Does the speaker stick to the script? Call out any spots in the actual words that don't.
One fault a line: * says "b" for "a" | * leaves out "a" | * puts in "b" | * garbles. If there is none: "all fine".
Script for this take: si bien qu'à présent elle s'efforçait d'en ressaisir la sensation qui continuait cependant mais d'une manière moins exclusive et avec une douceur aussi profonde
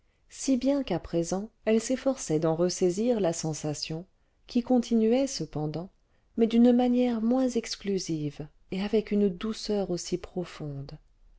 all fine